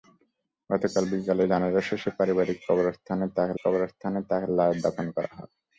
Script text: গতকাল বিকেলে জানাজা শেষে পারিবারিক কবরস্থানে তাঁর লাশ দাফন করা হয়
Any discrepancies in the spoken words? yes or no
yes